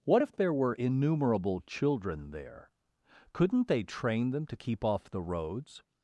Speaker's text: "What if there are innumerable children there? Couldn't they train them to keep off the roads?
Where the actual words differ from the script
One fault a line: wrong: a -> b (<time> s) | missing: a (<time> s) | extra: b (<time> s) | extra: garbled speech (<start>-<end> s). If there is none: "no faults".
wrong: are -> were (0.5 s)